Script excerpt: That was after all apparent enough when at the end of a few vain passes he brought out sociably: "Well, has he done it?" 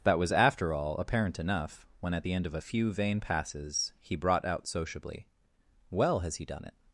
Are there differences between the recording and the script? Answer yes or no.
no